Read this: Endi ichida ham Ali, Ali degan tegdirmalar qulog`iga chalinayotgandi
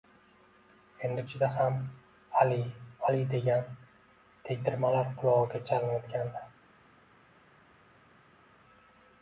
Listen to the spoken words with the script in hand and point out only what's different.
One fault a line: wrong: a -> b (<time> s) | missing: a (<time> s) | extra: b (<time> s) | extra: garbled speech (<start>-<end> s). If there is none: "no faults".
no faults